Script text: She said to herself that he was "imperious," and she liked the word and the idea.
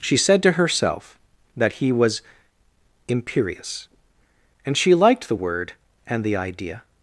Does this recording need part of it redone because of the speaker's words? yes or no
no